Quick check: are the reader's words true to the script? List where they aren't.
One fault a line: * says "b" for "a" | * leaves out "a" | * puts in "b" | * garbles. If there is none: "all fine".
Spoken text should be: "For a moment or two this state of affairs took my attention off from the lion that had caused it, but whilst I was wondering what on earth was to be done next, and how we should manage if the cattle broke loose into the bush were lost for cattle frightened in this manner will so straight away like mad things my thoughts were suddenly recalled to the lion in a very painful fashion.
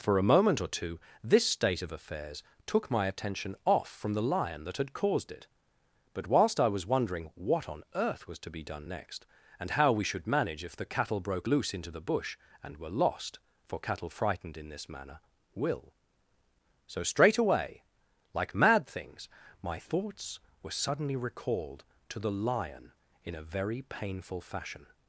* puts in "and"